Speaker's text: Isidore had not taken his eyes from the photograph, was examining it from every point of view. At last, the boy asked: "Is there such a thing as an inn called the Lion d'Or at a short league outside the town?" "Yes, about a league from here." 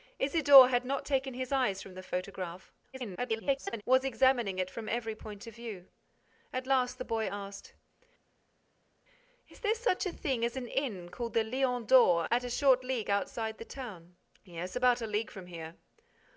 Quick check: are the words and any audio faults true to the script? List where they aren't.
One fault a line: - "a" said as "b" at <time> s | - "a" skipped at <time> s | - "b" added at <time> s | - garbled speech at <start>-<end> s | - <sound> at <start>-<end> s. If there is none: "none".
- garbled speech at 2.9-3.8 s